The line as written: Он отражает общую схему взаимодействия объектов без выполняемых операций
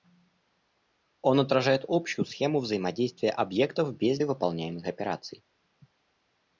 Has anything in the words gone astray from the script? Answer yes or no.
no